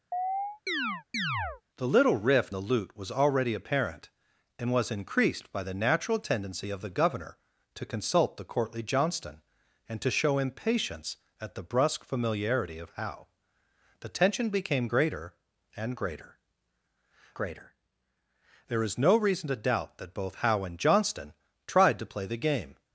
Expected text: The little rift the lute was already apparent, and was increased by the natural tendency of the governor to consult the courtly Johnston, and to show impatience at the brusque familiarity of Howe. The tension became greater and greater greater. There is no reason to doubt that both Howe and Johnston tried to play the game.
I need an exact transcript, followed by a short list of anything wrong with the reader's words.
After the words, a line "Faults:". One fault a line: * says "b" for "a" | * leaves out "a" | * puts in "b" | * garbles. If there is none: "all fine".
The little rift the lute was already apparent, and was increased by the natural tendency of the governor to consult the courtly Johnston, and to show impatience at the brusque familiarity of Howe. The tension became greater and greater greater. There is no reason to doubt that both Howe and Johnston tried to play the game.
Faults:
all fine